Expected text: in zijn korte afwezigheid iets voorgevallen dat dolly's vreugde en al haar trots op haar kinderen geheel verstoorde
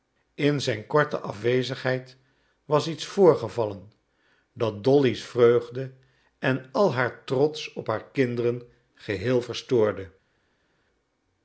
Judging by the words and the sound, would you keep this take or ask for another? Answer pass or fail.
fail